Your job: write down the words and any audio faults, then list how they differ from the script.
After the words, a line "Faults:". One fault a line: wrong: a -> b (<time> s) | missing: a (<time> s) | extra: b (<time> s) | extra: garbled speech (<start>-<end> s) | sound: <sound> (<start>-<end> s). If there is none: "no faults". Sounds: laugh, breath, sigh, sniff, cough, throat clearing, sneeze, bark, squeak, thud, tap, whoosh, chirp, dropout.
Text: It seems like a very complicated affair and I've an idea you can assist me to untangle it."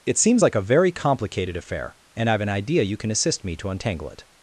It seems like a very complicated affair and I've an idea you can assist me to untangle it."
Faults:
no faults